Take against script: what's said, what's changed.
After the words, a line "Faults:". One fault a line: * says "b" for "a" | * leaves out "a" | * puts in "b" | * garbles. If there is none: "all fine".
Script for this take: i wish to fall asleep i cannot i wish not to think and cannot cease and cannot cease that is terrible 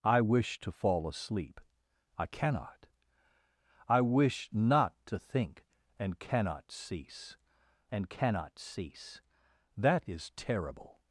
i wish to fall asleep i cannot i wish not to think and cannot cease and cannot cease that is terrible
Faults:
all fine